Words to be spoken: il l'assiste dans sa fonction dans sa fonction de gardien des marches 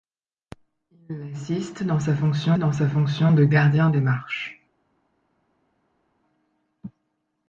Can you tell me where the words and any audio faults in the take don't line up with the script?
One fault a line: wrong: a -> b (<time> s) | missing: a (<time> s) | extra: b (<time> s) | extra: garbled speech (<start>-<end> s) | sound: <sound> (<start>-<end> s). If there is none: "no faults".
no faults